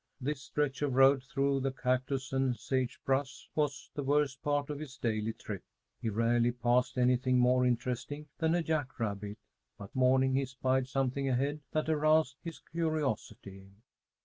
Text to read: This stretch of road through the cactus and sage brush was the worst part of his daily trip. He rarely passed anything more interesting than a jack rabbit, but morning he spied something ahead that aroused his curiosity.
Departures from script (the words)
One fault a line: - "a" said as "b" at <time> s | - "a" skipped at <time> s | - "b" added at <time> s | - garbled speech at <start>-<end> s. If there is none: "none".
none